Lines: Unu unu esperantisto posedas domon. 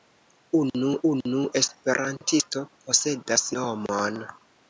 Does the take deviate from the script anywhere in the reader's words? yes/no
no